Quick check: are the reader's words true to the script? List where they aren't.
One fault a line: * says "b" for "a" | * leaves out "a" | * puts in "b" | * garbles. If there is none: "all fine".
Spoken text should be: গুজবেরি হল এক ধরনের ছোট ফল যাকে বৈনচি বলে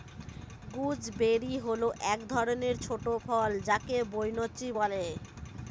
all fine